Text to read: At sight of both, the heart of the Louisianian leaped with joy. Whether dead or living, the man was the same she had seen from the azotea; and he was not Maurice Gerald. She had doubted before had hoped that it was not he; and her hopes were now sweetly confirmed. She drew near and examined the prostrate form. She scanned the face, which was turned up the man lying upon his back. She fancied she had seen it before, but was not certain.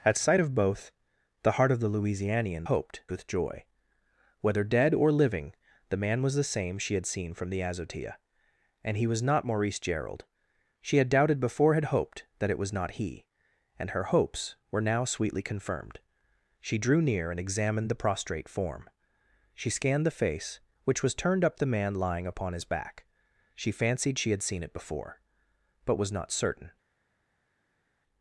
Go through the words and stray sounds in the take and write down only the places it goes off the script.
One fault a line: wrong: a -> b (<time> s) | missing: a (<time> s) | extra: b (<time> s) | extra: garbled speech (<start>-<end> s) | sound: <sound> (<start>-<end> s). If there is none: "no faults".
wrong: leaped -> hoped (2.6 s)